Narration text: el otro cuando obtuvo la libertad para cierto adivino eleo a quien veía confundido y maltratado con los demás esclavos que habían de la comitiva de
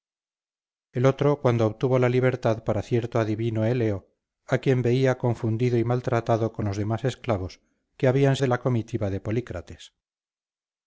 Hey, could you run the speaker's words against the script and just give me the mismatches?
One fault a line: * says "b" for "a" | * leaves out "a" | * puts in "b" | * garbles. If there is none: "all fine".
all fine